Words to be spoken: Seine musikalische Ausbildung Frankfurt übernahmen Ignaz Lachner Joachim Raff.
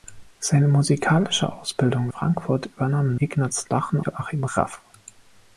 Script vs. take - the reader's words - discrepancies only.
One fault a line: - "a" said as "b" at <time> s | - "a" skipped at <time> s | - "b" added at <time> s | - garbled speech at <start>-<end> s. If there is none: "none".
none